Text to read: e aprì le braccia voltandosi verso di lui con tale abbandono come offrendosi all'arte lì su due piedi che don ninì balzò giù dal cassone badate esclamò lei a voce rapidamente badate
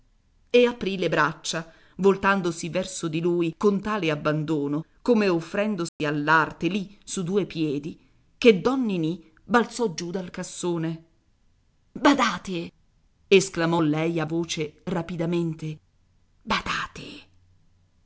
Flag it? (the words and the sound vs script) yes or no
yes